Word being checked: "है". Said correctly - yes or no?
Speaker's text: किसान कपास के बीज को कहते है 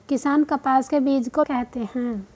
yes